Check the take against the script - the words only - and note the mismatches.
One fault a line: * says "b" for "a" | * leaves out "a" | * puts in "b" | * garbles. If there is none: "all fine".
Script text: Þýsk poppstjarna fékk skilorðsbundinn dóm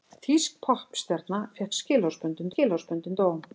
* puts in "skilorðsbundinn"